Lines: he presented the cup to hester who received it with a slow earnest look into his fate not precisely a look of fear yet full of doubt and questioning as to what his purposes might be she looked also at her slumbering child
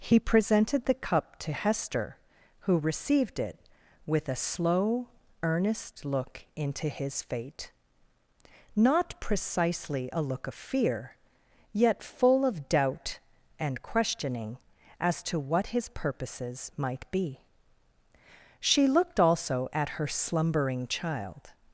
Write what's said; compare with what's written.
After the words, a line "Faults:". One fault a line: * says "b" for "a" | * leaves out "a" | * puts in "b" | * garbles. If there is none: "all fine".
he presented the cup to hester who received it with a slow earnest look into his fate not precisely a look of fear yet full of doubt and questioning as to what his purposes might be she looked also at her slumbering child
Faults:
all fine